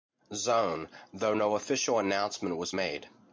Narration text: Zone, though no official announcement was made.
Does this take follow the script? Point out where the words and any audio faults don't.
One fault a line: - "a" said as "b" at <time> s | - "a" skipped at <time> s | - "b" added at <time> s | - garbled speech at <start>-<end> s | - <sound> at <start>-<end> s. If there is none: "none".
none